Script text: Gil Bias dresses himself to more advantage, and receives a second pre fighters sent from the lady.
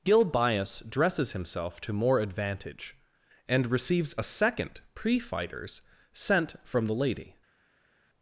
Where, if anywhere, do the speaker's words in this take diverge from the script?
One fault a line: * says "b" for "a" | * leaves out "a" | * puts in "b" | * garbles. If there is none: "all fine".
all fine